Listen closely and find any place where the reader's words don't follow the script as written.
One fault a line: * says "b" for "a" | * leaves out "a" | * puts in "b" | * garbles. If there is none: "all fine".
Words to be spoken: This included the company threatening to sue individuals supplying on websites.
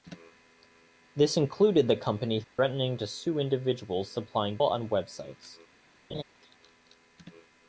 all fine